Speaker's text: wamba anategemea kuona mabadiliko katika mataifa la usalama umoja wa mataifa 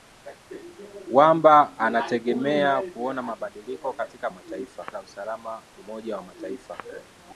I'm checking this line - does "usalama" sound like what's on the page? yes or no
yes